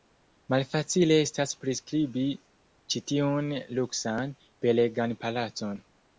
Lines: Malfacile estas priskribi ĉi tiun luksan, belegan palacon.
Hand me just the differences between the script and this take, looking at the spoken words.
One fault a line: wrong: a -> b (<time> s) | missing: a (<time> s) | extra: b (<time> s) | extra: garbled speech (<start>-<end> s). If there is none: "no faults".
no faults